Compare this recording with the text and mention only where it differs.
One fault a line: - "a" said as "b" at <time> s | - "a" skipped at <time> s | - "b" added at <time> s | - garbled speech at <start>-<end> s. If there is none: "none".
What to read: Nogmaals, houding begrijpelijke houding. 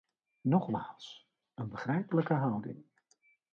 - "houding" said as "een" at 1.5 s